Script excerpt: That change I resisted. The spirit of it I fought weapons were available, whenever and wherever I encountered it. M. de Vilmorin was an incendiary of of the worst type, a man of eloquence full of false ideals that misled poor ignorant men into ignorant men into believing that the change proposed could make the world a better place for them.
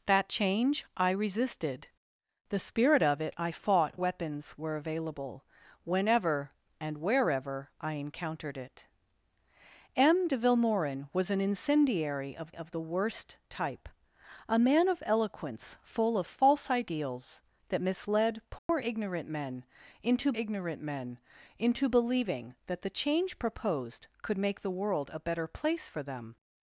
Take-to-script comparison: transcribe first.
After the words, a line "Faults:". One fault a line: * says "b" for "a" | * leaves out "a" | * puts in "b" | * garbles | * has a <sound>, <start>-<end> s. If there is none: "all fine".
That change I resisted. The spirit of it I fought weapons were available, whenever and wherever I encountered it. M. de Vilmorin was an incendiary of of the worst type, a man of eloquence full of false ideals that misled poor ignorant men into ignorant men into believing that the change proposed could make the world a better place for them.
Faults:
* has a dropout, 18.6-18.7 s